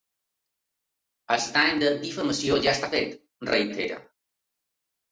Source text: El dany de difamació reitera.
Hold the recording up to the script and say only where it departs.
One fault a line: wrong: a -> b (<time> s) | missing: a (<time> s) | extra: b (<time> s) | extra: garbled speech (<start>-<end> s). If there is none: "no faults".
extra: ja està fet (2.7 s)